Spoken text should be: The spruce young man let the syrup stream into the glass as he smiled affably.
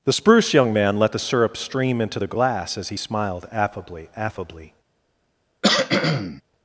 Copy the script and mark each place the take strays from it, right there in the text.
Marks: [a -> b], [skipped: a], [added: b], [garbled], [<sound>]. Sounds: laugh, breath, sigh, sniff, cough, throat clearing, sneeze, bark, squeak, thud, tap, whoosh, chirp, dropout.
The spruce young man let the syrup stream into the glass as he smiled affably. [added: affably] [cough]